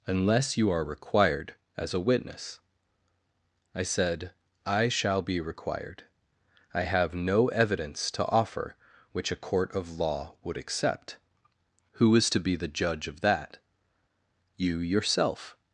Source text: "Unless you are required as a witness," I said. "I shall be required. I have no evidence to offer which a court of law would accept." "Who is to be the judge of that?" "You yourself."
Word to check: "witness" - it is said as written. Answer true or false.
true